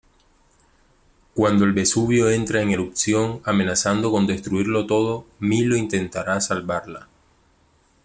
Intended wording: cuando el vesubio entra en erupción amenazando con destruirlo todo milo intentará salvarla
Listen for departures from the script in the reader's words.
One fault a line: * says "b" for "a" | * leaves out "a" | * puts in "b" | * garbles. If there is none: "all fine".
all fine